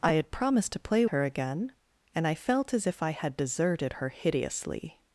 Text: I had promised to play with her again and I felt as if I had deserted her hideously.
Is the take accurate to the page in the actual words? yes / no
no